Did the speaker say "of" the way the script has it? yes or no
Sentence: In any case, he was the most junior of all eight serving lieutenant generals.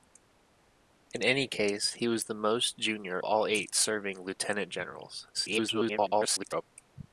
no